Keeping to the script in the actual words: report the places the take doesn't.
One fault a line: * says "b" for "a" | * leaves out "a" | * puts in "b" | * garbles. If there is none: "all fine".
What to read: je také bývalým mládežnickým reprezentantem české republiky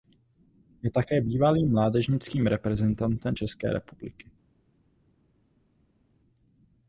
all fine